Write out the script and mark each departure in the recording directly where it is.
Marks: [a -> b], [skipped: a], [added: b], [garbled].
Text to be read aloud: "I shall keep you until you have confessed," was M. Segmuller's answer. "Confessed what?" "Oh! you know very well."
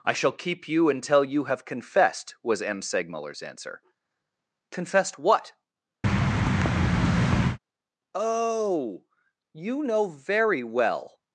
"I shall keep you until you have confessed," was M. Segmuller's answer. "Confessed what?" "Oh! you know very well."